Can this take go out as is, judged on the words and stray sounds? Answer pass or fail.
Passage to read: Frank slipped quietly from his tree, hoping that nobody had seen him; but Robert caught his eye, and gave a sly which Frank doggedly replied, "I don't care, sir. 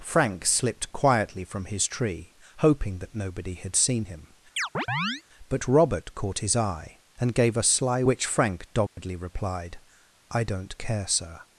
fail